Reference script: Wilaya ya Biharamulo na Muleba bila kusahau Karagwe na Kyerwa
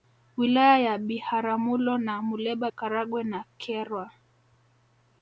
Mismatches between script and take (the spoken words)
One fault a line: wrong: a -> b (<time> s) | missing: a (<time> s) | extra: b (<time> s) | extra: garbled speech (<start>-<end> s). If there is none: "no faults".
missing: bila kusahau (2.7 s)